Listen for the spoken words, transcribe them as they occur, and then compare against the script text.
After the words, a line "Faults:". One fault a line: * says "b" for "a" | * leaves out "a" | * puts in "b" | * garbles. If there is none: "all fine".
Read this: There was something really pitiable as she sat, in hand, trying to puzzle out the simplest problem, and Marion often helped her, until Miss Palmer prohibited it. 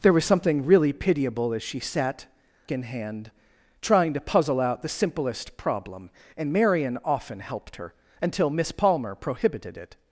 There was something really pitiable as she sat, in hand, trying to puzzle out the simplest problem, and Marion often helped her, until Miss Palmer prohibited it.
Faults:
all fine